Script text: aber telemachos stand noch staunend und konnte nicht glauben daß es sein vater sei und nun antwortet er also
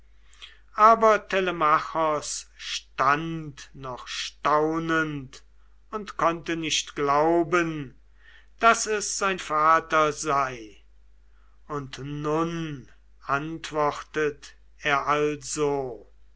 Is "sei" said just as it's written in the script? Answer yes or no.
yes